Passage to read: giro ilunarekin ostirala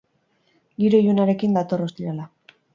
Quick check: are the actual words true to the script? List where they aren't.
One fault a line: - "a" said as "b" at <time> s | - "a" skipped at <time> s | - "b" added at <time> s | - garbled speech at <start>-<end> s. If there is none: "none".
- "dator" added at 1.6 s